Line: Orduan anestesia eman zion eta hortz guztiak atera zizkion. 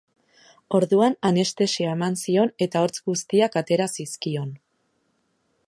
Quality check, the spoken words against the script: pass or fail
pass